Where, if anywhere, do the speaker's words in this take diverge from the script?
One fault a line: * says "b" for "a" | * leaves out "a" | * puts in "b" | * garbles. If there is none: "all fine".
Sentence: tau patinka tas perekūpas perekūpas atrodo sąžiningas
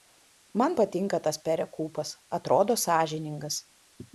* says "man" for "tau"
* leaves out "perekūpas"